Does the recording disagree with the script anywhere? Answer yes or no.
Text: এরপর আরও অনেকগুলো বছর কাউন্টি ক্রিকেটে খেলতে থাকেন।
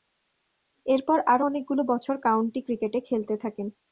no